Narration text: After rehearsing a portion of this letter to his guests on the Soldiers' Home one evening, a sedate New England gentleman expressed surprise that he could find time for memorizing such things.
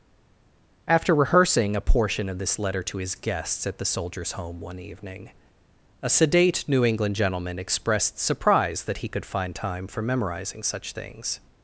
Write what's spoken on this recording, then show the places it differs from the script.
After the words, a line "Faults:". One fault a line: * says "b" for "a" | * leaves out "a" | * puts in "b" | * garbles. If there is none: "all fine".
After rehearsing a portion of this letter to his guests at the Soldiers' Home one evening, a sedate New England gentleman expressed surprise that he could find time for memorizing such things.
Faults:
* says "at" for "on"